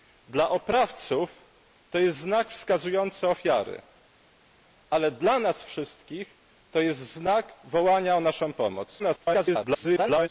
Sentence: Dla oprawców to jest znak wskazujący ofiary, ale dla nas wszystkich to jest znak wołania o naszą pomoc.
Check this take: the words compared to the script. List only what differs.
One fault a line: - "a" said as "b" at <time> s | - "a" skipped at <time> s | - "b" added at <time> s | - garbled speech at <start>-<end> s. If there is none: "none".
- garbled speech at 9.0-10.3 s